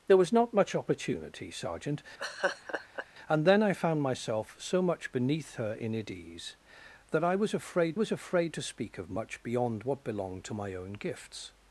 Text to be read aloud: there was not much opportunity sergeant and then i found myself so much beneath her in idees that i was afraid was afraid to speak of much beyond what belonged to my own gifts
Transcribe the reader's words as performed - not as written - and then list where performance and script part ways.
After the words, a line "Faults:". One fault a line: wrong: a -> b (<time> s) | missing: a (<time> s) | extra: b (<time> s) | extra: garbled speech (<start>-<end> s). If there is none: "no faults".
there was not much opportunity sergeant and then i found myself so much beneath her in idees that i was afraid was afraid to speak of much beyond what belonged to my own gifts
Faults:
no faults